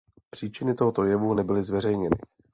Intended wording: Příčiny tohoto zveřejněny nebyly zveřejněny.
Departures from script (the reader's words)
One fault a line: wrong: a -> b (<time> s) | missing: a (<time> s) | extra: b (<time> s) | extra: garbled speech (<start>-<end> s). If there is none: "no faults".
wrong: zveřejněny -> jevu (1.0 s)